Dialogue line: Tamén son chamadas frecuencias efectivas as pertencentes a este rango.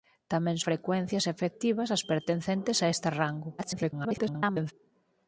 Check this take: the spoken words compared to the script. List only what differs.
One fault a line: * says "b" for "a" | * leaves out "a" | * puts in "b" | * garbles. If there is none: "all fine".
* leaves out "son chamadas"
* garbles